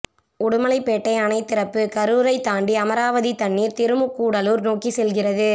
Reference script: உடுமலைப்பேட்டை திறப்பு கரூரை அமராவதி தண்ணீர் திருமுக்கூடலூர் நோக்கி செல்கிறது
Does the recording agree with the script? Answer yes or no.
no